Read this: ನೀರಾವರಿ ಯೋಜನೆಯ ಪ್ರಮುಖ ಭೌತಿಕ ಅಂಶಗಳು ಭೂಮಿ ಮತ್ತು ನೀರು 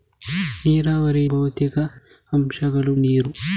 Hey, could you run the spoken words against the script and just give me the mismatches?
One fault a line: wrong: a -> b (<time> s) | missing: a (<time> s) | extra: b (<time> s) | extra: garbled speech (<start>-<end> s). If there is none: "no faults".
missing: ಯೋಜನೆಯ ಪ್ರಮುಖ (1.2 s)
missing: ಭೂಮಿ ಮತ್ತು (2.9 s)